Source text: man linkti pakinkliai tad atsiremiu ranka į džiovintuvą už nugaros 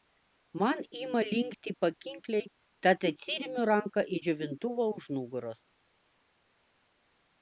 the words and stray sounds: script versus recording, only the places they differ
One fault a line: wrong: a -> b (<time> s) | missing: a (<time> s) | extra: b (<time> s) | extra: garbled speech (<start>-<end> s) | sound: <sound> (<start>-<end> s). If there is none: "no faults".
extra: ima (1.0 s)